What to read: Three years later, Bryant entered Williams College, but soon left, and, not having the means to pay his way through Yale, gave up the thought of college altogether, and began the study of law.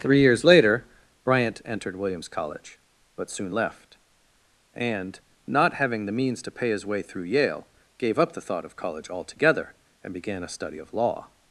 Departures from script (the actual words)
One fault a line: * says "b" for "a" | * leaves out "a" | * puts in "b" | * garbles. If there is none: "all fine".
* says "a" for "the"